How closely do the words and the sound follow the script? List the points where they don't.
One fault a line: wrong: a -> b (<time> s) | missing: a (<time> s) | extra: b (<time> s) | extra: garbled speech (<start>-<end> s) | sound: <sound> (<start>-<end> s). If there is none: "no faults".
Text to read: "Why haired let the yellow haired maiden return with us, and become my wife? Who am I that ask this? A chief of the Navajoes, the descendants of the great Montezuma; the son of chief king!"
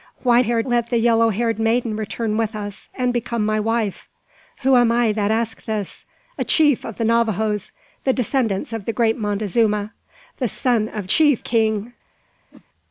sound: whoosh (12.5-12.7 s)